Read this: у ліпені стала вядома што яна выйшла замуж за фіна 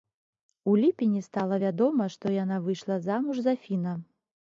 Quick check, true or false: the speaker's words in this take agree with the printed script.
true